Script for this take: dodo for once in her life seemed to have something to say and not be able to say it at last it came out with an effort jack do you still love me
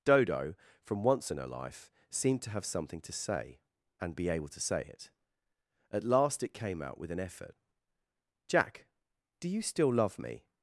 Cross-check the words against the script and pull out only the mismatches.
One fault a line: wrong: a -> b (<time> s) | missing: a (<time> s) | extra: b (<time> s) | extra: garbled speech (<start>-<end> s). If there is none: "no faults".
wrong: for -> from (0.8 s)
missing: not (4.2 s)